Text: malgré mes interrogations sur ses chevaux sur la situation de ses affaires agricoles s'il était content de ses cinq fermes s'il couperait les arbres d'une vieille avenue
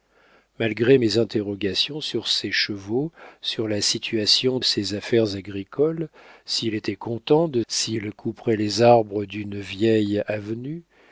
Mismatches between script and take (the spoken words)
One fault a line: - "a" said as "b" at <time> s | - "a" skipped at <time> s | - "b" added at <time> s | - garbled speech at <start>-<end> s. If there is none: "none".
- "de" skipped at 4.6 s
- "ses cinq fermes" skipped at 7.6 s